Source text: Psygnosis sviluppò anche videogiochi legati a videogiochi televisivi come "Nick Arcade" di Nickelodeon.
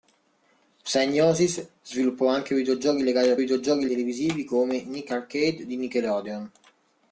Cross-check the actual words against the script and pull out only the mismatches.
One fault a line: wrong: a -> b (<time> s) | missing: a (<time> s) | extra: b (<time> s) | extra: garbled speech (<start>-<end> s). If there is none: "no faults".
no faults